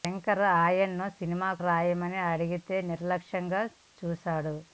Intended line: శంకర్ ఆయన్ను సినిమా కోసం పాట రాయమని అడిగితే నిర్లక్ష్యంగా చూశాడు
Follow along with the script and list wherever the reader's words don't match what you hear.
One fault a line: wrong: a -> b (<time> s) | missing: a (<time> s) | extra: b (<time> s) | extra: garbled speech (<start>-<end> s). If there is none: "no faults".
missing: కోసం పాట (1.5 s)